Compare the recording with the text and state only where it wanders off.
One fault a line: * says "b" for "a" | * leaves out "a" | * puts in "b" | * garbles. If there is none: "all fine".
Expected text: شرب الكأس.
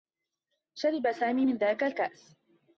* puts in "سامي من ذاك"